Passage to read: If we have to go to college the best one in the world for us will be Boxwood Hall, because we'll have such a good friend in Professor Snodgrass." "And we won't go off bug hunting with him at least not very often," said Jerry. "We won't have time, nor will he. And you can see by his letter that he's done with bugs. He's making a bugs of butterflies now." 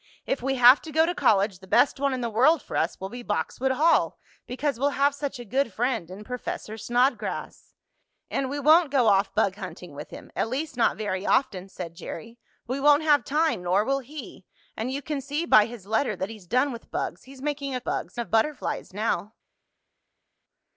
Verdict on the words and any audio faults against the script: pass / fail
pass